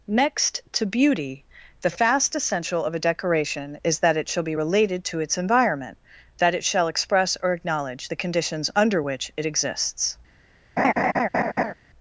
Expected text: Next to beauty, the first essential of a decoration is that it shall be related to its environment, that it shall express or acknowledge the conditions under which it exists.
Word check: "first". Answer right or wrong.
wrong